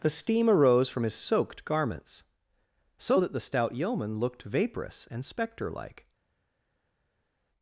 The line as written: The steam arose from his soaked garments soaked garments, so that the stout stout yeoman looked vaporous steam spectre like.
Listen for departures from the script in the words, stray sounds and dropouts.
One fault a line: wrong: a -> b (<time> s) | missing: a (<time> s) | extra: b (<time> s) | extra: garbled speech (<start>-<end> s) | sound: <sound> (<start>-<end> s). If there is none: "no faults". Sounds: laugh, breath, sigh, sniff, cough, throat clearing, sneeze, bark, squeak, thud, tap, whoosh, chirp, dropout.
missing: soaked garments (2.2 s)
missing: stout (3.7 s)
wrong: steam -> and (5.1 s)